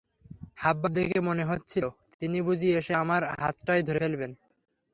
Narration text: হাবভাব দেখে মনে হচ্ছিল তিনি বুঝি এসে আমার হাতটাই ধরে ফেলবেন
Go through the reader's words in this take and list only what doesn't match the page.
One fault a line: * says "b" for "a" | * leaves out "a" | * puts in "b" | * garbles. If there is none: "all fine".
all fine